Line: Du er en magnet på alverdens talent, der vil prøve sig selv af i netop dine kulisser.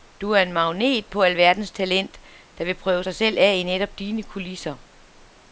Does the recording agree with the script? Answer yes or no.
yes